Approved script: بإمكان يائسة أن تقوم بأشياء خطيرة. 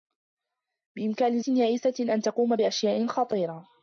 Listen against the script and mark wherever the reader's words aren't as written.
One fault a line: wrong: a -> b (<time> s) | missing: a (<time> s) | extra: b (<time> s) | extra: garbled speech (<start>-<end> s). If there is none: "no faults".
no faults